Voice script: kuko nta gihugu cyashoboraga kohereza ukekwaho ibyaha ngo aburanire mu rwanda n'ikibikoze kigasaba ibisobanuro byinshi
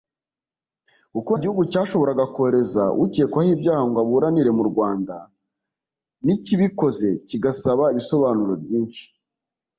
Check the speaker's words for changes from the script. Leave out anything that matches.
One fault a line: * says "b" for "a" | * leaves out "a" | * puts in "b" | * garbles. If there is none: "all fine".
* leaves out "nta"